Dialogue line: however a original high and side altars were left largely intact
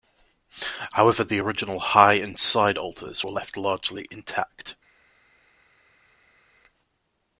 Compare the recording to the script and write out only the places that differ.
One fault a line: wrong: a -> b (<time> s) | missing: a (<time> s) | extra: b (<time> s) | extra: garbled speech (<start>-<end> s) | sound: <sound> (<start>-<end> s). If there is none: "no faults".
wrong: a -> the (1.2 s)